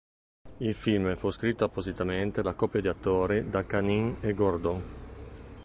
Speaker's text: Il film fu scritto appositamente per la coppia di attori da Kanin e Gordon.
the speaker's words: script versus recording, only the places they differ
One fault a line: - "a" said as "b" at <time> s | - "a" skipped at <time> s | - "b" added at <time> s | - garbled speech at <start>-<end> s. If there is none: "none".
- "per" skipped at 2.4 s